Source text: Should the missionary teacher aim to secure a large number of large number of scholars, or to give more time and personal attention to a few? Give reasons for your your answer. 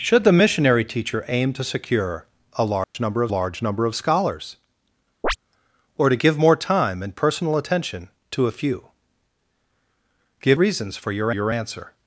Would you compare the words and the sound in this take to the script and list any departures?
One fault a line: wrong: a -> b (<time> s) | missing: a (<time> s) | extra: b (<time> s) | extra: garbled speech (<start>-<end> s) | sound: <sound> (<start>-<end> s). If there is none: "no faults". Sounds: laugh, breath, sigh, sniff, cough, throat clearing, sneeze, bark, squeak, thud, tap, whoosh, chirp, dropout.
sound: dropout (2.8-2.9 s)
sound: chirp (5.2-5.4 s)